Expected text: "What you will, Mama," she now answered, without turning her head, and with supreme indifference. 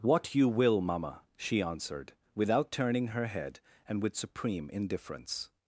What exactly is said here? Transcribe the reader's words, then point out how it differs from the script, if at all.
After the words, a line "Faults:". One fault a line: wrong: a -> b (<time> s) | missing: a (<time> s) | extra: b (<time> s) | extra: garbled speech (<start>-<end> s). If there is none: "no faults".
"What you will, Mama," she answered, without turning her head, and with supreme indifference.
Faults:
missing: now (1.6 s)